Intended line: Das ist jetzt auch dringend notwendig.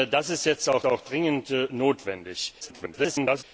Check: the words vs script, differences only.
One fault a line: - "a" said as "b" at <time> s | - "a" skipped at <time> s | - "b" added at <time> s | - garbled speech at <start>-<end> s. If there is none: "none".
- "auch" added at 0.9 s
- garbled speech at 2.6-3.4 s